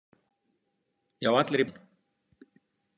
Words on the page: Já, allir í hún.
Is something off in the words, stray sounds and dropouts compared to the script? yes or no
no